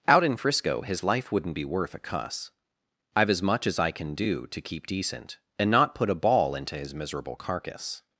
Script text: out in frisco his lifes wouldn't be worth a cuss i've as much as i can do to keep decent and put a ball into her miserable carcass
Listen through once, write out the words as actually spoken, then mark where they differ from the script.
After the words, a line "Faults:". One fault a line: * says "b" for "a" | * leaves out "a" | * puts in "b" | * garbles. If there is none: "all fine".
out in frisco his life wouldn't be worth a cuss i've as much as i can do to keep decent and not put a ball into his miserable carcass
Faults:
* says "life" for "lifes"
* puts in "not"
* says "his" for "her"